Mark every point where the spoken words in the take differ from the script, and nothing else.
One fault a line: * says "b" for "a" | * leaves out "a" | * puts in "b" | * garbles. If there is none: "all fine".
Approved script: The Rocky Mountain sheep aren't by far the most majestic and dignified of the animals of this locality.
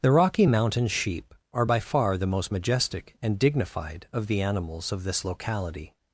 * says "are" for "aren't"